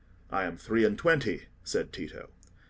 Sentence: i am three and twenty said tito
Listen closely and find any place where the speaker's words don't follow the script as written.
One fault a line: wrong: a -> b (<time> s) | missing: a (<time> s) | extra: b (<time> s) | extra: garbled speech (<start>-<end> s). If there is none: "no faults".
no faults